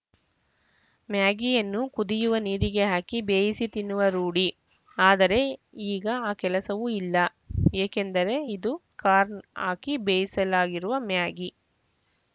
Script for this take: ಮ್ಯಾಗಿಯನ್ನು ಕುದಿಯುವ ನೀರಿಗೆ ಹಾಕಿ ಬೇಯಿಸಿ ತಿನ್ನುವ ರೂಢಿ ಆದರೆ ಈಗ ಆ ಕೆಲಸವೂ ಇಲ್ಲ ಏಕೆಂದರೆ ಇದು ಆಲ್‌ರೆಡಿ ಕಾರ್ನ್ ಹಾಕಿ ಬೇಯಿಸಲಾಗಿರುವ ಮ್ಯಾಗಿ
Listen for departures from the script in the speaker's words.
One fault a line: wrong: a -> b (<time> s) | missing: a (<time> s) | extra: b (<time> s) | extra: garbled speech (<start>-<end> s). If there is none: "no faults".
missing: ಆಲ್‌ರೆಡಿ (8.7 s)